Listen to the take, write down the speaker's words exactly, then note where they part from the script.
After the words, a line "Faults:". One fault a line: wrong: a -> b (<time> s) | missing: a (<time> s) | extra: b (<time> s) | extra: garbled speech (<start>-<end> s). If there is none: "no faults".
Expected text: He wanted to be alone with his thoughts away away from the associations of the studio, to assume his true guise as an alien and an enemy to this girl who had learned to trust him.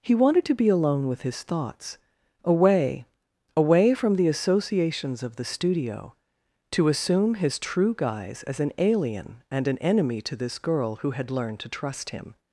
He wanted to be alone with his thoughts away away from the associations of the studio, to assume his true guise as an alien and an enemy to this girl who had learned to trust him.
Faults:
no faults